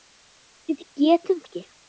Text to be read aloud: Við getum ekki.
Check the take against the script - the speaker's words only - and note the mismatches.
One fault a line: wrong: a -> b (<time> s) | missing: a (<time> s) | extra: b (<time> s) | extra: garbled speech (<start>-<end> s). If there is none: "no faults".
no faults